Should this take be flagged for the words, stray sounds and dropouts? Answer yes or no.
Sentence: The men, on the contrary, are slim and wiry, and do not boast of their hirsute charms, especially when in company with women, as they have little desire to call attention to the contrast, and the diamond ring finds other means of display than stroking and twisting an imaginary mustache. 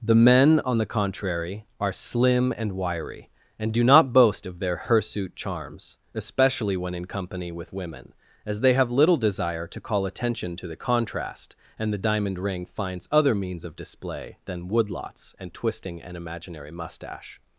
yes